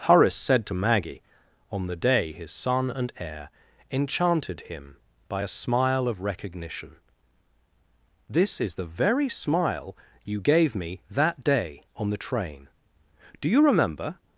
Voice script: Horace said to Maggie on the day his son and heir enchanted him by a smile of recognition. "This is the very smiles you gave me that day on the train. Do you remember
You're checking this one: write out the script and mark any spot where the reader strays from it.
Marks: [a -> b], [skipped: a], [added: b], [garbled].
Horace said to Maggie on the day his son and heir enchanted him by a smile of recognition. "This is the very [smiles -> smile] you gave me that day on the train. Do you remember